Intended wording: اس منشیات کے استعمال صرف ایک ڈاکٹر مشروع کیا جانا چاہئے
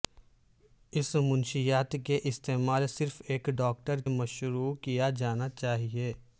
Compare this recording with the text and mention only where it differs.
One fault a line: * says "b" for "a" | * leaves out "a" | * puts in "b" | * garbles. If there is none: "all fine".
all fine